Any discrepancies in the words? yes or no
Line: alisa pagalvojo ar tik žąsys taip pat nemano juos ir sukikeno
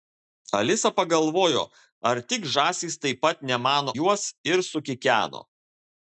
no